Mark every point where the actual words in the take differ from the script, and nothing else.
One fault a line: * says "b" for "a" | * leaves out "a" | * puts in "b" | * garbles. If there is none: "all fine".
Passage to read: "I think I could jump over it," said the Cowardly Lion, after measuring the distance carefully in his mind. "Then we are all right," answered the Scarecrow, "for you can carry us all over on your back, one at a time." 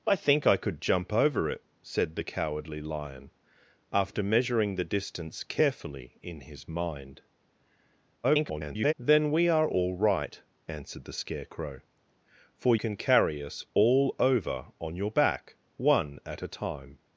* garbles
* leaves out "you"